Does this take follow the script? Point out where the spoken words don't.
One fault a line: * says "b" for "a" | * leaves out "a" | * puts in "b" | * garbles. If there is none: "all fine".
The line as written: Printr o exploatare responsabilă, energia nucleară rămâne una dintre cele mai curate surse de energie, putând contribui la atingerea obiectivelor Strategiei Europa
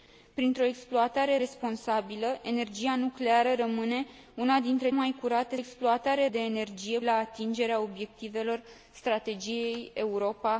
* leaves out "cele"
* says "exploatare" for "surse"
* leaves out "putând contribui"